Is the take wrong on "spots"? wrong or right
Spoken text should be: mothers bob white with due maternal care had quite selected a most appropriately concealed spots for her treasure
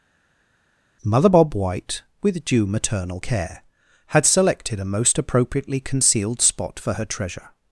wrong